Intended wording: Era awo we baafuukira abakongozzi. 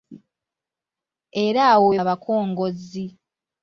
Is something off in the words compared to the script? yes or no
yes